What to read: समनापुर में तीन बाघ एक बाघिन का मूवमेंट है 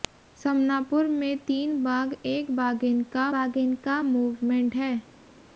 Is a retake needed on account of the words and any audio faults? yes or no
yes